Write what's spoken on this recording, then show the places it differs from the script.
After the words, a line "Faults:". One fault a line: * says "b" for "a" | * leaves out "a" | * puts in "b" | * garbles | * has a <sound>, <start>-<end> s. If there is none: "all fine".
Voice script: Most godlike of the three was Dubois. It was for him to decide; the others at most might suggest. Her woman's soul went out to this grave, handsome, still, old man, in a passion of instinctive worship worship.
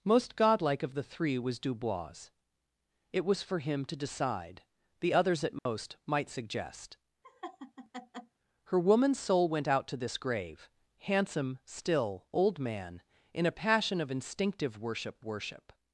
Most godlike of the three was Dubois. It was for him to decide; the others at most might suggest. Her woman's soul went out to this grave, handsome, still, old man, in a passion of instinctive worship worship.
Faults:
* has a dropout, 5.6-5.7 s
* has a laugh, 7.2-8.4 s